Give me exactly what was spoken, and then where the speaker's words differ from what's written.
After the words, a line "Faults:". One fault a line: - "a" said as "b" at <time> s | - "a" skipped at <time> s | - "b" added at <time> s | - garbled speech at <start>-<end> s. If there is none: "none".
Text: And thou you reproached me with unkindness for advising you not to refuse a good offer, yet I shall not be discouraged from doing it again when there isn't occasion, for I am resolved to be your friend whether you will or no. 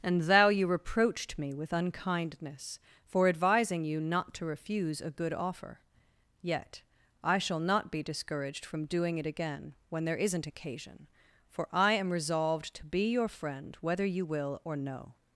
And thou you reproached me with unkindness for advising you not to refuse a good offer, yet I shall not be discouraged from doing it again when there isn't occasion, for I am resolved to be your friend whether you will or no.
Faults:
none